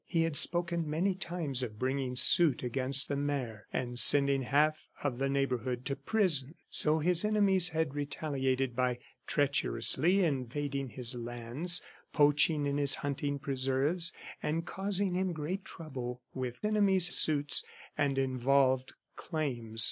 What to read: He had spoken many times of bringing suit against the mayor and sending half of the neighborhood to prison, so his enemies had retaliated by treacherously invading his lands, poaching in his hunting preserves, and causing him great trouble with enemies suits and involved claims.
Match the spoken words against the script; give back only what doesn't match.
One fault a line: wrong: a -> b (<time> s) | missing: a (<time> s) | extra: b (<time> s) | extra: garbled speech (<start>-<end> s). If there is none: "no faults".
no faults